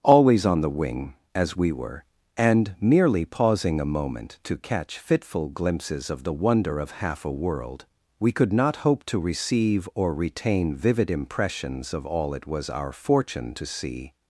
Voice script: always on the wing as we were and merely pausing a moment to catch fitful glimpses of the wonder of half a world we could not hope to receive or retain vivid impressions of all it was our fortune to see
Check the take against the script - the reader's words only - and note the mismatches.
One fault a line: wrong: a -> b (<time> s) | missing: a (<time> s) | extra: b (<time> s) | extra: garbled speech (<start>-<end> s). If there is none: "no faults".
no faults